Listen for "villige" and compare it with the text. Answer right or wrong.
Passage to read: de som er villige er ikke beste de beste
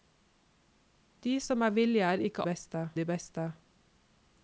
right